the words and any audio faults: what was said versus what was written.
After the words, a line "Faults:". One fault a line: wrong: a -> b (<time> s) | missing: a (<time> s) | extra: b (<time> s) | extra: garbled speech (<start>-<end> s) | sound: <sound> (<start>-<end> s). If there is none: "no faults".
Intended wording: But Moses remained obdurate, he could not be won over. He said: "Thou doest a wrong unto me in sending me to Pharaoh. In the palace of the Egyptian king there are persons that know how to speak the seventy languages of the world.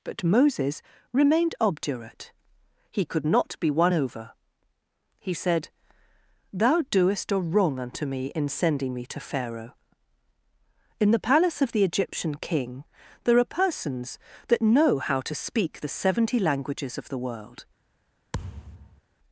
But Moses remained obdurate, he could not be won over. He said: "Thou doest a wrong unto me in sending me to Pharaoh. In the palace of the Egyptian king there are persons that know how to speak the seventy languages of the world.
Faults:
sound: thud (18.3-19.0 s)